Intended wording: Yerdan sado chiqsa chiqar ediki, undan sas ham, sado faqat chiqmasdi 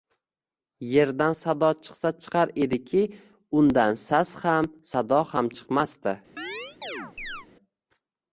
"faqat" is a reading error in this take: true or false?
true